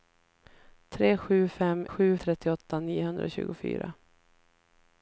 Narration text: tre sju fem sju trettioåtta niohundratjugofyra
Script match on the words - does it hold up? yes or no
yes